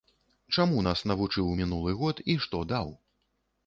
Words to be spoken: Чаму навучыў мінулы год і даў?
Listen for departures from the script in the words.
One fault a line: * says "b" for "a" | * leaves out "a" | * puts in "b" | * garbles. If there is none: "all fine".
* puts in "нас"
* puts in "што"